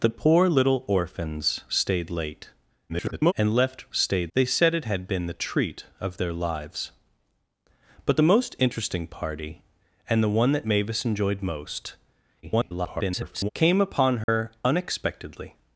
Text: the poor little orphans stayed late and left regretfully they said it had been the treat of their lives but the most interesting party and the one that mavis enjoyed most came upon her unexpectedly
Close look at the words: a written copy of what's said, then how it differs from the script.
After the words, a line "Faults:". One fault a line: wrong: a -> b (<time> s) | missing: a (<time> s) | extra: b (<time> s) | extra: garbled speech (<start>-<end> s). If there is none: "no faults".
the poor little orphans stayed late [garbled] and left stayed they said it had been the treat of their lives but the most interesting party and the one that mavis enjoyed most [garbled] came upon her unexpectedly
Faults:
extra: garbled speech (2.9-3.3 s)
wrong: regretfully -> stayed (3.9 s)
extra: garbled speech (12.4-13.5 s)